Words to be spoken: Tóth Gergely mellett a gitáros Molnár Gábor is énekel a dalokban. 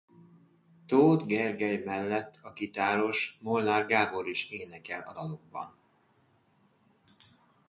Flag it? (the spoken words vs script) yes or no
no